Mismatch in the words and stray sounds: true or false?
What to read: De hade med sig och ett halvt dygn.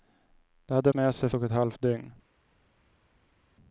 false